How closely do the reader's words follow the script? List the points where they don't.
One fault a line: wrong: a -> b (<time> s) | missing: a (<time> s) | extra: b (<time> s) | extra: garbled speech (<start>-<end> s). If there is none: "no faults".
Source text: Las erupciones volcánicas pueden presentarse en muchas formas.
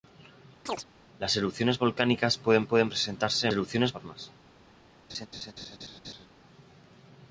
extra: pueden (2.6 s)
wrong: muchas -> erupciones (3.5 s)